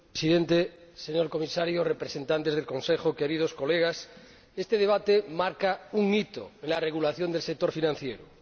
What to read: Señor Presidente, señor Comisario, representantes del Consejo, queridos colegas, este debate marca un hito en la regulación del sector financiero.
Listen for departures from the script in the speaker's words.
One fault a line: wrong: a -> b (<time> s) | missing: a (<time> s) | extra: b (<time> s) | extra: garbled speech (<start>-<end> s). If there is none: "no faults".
no faults